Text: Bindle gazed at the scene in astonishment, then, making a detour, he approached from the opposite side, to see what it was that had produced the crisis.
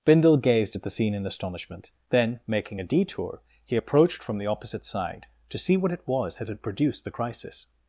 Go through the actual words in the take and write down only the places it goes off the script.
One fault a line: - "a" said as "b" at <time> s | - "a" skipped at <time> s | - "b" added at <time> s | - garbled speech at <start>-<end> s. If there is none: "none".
none